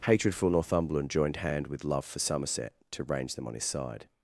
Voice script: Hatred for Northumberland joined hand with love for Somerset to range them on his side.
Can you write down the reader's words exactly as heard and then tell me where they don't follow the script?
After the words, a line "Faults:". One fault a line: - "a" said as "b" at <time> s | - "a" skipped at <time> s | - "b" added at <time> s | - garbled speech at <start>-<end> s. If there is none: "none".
Hatred for Northumberland joined hand with love for Somerset to range them on his side.
Faults:
none